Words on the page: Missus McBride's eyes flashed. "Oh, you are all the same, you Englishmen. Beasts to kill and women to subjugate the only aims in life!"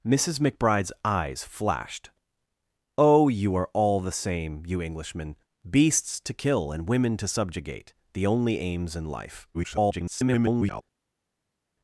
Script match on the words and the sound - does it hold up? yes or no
no